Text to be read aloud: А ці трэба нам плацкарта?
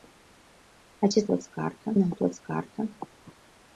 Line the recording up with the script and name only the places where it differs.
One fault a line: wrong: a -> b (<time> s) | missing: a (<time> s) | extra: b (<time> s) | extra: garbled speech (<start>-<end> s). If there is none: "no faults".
wrong: трэба -> плацкарта (1.3 s)